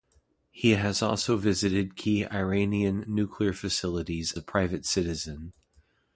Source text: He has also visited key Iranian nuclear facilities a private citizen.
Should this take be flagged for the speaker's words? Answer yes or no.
no